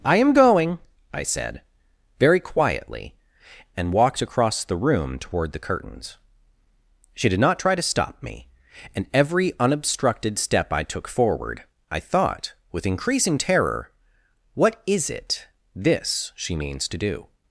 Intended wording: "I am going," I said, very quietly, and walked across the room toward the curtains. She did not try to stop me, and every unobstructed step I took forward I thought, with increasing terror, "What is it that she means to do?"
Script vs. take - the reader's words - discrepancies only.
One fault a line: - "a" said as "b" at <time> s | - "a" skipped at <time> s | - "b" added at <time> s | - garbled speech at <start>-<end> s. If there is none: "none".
- "that" said as "this" at 15.7 s